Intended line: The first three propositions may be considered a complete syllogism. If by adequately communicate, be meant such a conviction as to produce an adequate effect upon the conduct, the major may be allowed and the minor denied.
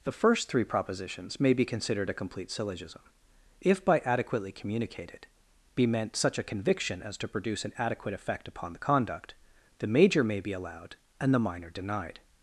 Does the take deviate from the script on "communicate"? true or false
true